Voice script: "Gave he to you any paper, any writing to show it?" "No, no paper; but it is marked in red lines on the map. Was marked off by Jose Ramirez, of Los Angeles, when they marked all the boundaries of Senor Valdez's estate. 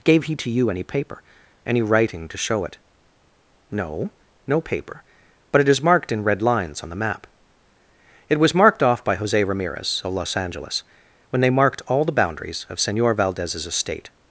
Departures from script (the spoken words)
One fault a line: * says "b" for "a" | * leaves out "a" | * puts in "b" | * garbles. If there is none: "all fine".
* puts in "It"